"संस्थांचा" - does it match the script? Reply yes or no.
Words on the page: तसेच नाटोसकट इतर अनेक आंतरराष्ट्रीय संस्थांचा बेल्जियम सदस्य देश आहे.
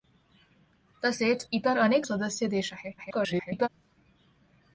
no